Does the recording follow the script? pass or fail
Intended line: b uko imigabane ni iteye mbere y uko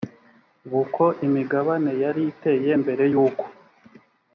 fail